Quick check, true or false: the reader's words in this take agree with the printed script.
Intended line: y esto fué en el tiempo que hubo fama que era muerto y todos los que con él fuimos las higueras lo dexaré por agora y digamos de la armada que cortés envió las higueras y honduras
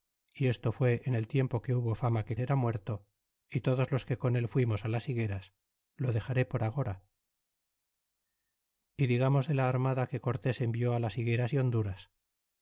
true